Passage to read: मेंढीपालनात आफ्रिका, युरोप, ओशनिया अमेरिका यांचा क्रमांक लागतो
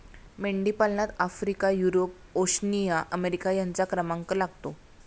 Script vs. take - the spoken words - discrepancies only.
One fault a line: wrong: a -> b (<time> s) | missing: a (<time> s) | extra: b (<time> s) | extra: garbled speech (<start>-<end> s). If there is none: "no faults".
no faults